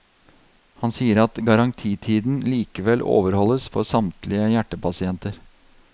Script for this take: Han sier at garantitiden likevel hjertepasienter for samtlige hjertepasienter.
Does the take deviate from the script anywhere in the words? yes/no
yes